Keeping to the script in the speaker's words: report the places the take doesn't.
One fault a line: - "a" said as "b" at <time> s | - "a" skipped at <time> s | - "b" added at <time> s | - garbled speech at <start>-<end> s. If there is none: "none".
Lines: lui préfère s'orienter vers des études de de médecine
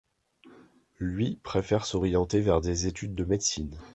- "de" skipped at 3.2 s